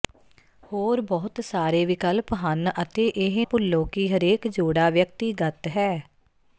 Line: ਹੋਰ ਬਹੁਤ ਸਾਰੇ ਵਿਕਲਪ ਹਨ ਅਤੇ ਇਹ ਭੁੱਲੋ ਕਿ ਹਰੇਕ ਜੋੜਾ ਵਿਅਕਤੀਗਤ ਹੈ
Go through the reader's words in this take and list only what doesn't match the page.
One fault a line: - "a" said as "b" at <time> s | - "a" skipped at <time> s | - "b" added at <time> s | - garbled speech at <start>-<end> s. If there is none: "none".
none